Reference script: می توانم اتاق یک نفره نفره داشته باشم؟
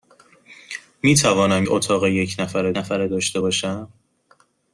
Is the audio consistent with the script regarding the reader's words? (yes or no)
yes